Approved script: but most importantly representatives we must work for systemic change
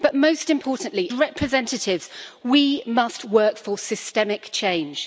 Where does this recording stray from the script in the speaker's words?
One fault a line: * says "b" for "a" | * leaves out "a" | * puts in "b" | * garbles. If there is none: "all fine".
all fine